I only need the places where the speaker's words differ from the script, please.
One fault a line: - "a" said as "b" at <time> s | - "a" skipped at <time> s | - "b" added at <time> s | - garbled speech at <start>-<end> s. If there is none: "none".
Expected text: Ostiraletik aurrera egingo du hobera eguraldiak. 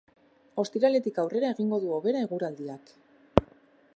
none